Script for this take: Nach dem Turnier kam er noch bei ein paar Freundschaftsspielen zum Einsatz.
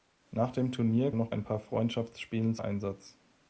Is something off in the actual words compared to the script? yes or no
yes